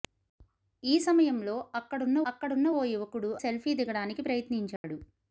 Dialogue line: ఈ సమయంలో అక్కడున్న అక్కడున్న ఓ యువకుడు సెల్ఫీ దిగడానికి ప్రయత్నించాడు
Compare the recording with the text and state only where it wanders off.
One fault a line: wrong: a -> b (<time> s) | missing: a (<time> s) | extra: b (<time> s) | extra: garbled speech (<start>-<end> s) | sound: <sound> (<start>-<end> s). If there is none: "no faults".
sound: dropout (4.8-4.8 s)